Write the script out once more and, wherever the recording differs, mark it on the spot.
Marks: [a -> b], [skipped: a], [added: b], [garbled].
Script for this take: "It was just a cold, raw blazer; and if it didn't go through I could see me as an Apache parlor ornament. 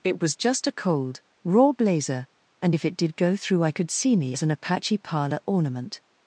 "It was just a cold, raw blazer; and if it [didn't -> did] go through I could see me as an Apache parlor ornament.